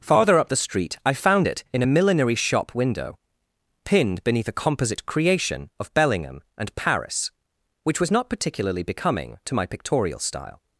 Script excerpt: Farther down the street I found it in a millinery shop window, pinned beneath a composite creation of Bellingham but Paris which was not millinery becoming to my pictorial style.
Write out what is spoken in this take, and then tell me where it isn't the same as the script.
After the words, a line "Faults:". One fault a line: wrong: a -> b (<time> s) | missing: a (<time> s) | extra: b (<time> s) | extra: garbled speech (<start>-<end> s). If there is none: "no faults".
Farther up the street I found it in a millinery shop window, pinned beneath a composite creation of Bellingham and Paris which was not particularly becoming to my pictorial style.
Faults:
wrong: down -> up (0.4 s)
wrong: but -> and (6.6 s)
wrong: millinery -> particularly (8.3 s)